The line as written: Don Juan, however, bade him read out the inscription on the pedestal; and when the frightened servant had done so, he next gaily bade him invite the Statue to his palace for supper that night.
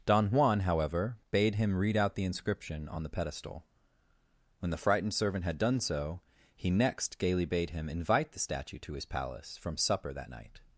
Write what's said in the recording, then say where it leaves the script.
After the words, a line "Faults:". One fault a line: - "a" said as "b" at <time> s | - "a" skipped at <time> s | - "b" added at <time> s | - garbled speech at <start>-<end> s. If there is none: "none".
Don Juan, however, bade him read out the inscription on the pedestal; when the frightened servant had done so, he next gaily bade him invite the Statue to his palace from supper that night.
Faults:
- "and" skipped at 3.6 s
- "for" said as "from" at 9.6 s